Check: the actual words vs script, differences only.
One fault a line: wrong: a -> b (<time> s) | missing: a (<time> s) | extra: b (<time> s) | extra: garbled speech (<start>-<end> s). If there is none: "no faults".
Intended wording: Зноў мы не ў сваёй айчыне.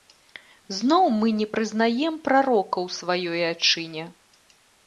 extra: прызнаем прарока (1.6 s)